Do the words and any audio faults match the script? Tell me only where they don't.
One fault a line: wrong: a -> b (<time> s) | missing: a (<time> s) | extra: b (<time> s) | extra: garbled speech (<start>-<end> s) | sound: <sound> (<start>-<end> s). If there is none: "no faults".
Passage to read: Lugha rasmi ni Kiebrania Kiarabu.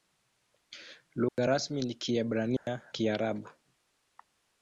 sound: dropout (1.3-1.4 s)
sound: dropout (2.6-2.7 s)